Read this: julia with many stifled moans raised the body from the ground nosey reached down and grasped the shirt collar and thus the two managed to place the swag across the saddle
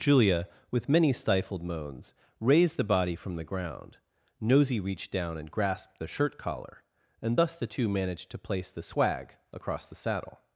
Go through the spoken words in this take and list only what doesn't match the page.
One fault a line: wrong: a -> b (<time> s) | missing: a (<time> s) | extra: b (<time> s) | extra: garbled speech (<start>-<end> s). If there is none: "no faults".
no faults